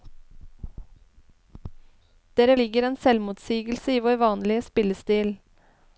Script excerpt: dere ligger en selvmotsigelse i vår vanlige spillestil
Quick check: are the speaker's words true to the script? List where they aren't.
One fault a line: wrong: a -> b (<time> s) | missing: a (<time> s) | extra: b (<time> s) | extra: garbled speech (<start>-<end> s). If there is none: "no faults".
no faults